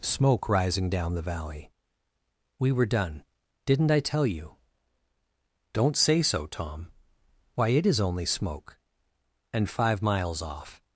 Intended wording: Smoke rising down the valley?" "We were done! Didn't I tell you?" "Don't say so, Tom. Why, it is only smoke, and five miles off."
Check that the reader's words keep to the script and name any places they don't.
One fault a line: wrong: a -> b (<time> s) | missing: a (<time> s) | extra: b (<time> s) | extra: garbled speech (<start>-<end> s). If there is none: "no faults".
no faults